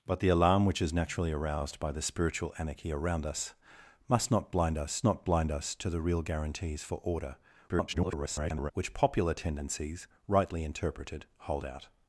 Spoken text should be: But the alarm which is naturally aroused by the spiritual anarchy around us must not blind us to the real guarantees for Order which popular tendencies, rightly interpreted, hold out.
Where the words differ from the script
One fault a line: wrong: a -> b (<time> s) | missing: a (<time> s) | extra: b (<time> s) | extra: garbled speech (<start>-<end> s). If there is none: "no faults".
extra: not blind us (5.0 s)
extra: garbled speech (7.7-8.7 s)